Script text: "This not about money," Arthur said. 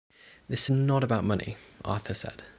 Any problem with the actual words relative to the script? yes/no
no